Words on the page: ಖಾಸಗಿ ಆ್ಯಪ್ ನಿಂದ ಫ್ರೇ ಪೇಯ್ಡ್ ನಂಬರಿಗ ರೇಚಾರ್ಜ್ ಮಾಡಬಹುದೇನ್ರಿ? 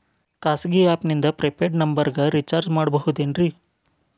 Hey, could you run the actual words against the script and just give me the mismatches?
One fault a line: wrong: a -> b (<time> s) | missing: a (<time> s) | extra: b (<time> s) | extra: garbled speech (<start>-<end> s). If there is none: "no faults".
no faults